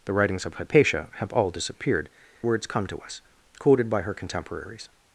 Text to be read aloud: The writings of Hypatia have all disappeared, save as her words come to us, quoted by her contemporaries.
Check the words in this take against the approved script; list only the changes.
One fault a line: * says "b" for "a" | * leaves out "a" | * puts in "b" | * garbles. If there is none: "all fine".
* leaves out "save as her"